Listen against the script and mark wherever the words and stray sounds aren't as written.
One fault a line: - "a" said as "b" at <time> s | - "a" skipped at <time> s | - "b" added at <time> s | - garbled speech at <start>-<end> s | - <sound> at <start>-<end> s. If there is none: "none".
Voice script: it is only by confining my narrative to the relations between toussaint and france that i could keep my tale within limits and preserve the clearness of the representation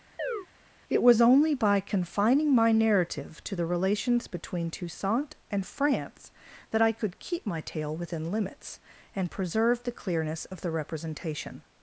- chirp at 0.2-0.5 s
- "is" said as "was" at 1.0 s